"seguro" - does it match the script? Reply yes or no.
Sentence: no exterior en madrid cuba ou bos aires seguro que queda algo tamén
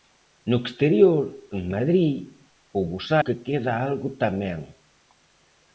no